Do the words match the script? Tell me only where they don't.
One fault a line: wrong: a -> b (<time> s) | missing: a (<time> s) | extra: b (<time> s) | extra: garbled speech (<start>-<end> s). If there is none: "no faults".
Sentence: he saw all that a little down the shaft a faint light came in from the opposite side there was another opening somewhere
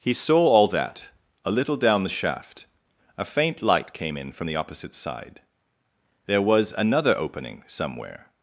no faults